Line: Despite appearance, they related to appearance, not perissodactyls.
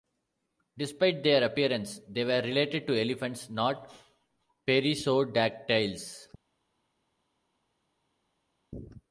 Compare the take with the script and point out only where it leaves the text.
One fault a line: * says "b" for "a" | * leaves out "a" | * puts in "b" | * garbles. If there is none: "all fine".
* puts in "their"
* puts in "were"
* says "elephants" for "appearance"